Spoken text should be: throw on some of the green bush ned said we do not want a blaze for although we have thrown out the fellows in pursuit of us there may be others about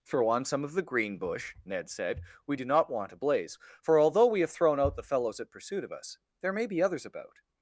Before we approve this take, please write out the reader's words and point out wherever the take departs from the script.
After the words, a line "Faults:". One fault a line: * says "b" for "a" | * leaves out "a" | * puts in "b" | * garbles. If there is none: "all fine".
throw on some of the green bush ned said we do not want a blaze for although we have thrown out the fellows at pursuit of us there may be others about
Faults:
* says "at" for "in"